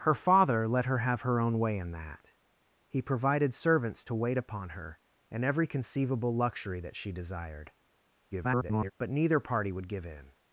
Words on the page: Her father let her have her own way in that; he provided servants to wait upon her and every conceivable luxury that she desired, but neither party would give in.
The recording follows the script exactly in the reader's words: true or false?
false